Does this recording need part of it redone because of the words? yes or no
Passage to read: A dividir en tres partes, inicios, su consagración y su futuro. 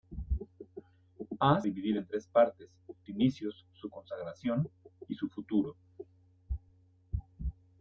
no